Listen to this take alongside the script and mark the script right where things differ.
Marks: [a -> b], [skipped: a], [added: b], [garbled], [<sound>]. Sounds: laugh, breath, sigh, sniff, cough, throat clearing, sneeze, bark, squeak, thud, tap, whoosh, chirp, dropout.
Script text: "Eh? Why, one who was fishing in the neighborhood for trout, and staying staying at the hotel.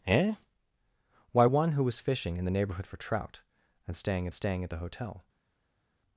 "Eh? Why, one who was fishing in the neighborhood for trout, and staying staying at the hotel.